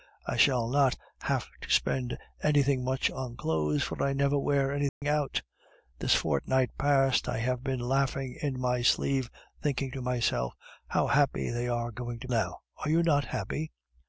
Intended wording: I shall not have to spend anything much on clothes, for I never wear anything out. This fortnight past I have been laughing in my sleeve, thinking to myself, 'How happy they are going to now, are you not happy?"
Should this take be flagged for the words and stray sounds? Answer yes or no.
yes